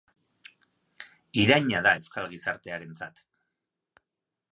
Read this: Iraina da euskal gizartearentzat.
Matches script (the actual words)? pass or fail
pass